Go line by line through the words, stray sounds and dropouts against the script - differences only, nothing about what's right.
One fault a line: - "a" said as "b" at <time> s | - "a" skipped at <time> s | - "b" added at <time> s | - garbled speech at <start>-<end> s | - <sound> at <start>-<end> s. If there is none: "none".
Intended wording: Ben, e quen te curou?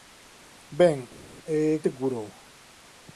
- "quen" skipped at 1.6 s